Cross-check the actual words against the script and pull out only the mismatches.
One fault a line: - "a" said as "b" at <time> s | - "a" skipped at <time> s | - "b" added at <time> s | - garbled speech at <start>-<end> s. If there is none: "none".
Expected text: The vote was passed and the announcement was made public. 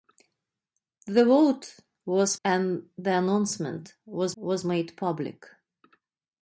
- "passed" skipped at 2.4 s
- "was" added at 4.4 s